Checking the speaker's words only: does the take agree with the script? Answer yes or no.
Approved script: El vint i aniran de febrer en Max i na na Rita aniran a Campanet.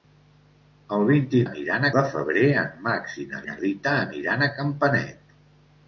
yes